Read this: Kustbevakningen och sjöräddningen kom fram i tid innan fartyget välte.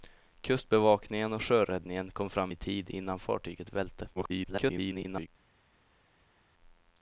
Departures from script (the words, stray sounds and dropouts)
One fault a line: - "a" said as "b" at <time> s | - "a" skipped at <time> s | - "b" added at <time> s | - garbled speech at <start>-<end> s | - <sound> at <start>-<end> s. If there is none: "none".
- garbled speech at 4.2-5.3 s